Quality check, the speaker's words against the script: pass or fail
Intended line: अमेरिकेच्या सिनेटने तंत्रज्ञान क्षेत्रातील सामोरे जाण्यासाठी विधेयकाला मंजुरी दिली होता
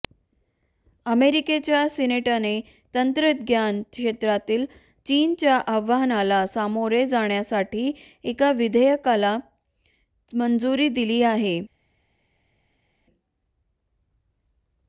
fail